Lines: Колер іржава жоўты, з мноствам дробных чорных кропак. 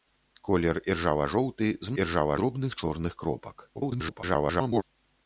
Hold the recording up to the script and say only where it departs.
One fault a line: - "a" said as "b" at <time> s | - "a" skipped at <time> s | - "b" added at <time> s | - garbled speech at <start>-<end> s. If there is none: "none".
- "мноствам" said as "іржава" at 2.0 s
- garbled speech at 3.7-4.8 s